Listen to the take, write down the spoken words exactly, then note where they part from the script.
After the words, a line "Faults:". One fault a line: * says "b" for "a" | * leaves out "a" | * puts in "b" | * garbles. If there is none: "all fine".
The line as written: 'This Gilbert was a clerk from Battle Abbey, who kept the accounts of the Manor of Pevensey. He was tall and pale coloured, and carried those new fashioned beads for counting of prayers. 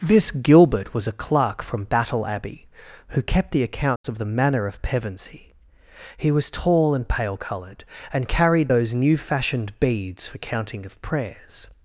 'This Gilbert was a clerk from Battle Abbey, who kept the accounts of the Manor of Pevensey. He was tall and pale coloured, and carried those new fashioned beads for counting of prayers.
Faults:
all fine